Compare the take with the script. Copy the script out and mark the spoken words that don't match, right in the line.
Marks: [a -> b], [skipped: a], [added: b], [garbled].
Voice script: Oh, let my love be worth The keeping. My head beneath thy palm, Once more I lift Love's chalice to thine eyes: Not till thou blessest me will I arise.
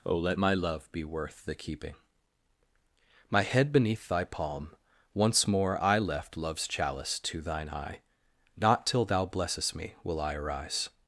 Oh, let my love be worth The keeping. My head beneath thy palm, Once more I [lift -> left] Love's chalice to thine [eyes: -> eye] Not till thou blessest me will I arise.